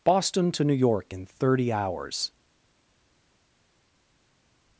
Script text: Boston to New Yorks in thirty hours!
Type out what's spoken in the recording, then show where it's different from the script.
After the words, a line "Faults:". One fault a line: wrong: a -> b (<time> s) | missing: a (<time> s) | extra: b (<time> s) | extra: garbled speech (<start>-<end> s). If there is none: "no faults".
Boston to New York in thirty hours!
Faults:
wrong: Yorks -> York (0.7 s)